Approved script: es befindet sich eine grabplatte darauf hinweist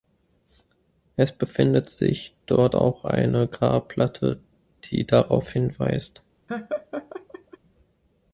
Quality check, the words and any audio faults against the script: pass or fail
fail